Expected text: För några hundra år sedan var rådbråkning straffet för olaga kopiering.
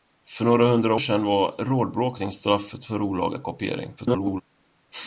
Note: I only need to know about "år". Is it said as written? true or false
false